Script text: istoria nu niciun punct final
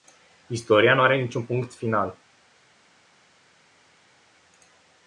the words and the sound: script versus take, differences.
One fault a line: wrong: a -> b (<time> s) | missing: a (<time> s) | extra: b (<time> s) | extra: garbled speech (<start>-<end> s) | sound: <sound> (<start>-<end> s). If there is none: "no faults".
extra: are (1.0 s)